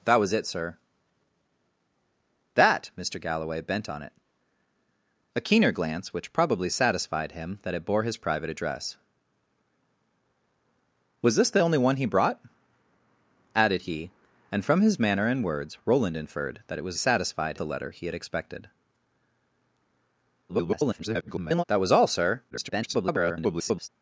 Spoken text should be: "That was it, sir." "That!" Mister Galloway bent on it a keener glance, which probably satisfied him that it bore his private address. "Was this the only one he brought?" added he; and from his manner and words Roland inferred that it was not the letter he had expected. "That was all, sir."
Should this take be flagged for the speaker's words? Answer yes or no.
yes